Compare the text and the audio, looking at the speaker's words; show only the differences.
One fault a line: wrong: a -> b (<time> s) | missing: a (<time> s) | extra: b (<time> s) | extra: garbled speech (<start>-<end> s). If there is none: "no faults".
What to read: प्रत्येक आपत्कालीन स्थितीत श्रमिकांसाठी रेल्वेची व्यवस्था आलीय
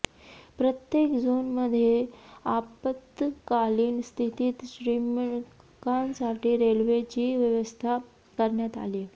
extra: झोनमध्ये (1.1 s)
extra: करण्यात (8.4 s)